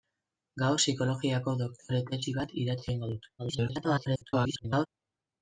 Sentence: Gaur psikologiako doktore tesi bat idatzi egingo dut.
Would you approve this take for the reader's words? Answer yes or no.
no